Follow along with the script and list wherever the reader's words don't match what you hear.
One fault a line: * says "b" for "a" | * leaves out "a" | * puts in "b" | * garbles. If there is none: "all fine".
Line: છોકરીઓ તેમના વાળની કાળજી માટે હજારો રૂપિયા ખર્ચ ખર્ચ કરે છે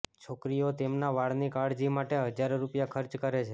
* leaves out "ખર્ચ"